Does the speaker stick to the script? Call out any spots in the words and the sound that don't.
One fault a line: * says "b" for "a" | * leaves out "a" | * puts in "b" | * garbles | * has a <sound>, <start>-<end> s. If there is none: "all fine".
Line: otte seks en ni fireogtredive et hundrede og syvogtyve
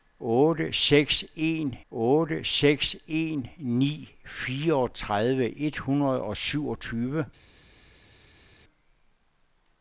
* puts in "otte seks en"